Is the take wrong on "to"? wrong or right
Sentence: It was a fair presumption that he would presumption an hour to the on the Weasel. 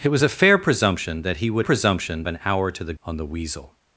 right